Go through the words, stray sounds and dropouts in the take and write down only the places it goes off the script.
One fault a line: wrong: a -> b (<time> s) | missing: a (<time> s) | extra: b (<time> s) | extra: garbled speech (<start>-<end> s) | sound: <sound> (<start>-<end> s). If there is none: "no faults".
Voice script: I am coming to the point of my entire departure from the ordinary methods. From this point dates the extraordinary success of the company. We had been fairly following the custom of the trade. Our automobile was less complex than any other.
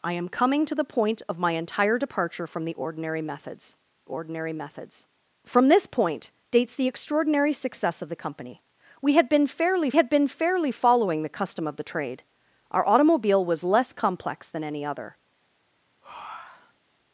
extra: ordinary methods (4.0 s)
extra: had been fairly (9.9 s)
sound: breath (16.0-16.8 s)